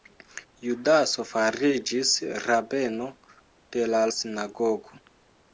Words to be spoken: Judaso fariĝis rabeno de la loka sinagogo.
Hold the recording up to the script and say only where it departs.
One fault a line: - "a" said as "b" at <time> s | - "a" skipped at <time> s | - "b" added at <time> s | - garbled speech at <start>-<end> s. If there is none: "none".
- "loka" skipped at 4.0 s